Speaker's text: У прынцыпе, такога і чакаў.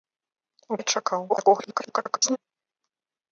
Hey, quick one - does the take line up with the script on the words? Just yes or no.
no